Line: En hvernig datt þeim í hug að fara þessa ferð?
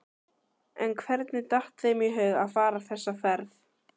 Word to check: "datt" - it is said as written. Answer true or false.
true